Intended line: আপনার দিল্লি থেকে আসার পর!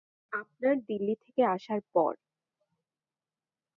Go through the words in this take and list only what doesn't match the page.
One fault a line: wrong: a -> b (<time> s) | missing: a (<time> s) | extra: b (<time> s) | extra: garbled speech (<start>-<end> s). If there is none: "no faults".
no faults